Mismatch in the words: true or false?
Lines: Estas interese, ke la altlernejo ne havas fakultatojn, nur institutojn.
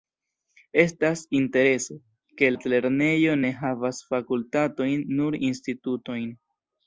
true